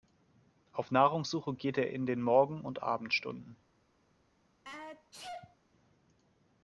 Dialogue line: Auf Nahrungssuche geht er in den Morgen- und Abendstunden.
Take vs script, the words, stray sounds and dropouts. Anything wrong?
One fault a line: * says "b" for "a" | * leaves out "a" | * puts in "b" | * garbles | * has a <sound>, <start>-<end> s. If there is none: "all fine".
* has a sneeze, 4.6-5.6 s